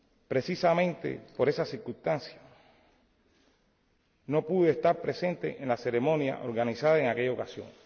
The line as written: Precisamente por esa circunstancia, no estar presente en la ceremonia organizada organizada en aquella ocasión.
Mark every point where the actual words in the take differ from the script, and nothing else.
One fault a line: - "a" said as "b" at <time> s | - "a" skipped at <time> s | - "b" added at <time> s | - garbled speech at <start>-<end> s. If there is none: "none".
- "pude" added at 4.5 s
- "organizada" skipped at 7.0 s